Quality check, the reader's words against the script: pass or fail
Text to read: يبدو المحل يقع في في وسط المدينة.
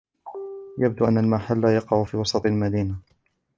fail